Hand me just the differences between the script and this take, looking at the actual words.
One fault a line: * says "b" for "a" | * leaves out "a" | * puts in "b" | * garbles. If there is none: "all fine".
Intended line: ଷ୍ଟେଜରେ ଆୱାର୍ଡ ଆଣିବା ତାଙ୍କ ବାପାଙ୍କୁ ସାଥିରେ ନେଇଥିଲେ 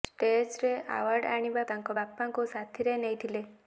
all fine